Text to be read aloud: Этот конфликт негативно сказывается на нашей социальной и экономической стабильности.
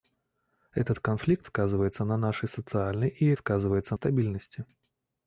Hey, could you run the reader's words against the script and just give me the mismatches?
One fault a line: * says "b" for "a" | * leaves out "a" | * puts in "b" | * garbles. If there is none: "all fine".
* leaves out "негативно"
* says "сказывается" for "экономической"